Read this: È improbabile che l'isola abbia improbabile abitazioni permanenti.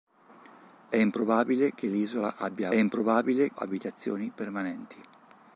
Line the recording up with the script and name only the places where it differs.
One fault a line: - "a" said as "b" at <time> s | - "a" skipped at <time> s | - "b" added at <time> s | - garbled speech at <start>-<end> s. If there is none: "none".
none